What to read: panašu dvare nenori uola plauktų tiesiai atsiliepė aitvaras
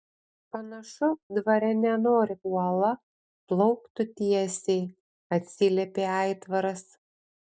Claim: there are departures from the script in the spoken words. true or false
false